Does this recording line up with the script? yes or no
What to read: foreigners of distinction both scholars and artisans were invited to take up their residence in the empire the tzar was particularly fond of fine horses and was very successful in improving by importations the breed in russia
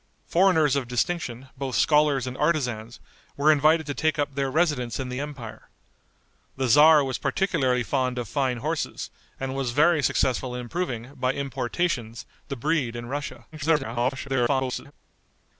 no